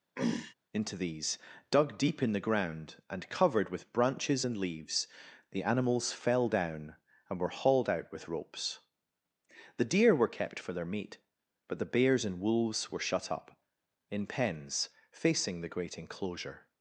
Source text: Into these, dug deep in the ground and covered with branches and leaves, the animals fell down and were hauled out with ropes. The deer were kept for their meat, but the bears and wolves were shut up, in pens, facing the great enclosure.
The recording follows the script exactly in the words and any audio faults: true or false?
false